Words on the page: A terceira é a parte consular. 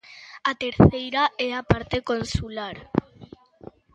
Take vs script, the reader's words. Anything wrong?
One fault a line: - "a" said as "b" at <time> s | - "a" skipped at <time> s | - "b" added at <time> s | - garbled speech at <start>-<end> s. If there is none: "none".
none